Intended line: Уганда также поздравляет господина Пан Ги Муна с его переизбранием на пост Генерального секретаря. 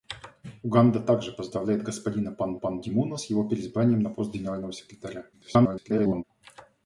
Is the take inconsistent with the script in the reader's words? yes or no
yes